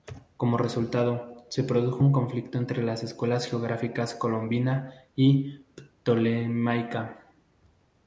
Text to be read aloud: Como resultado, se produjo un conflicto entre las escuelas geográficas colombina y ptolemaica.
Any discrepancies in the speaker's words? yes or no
no